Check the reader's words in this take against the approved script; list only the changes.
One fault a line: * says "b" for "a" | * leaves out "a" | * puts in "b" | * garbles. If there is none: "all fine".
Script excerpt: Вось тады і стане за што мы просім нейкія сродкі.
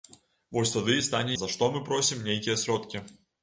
all fine